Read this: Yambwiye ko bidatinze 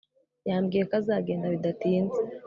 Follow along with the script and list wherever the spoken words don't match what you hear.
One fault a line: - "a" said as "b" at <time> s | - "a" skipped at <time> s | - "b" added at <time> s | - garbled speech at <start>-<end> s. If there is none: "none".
- "azagenda" added at 1.0 s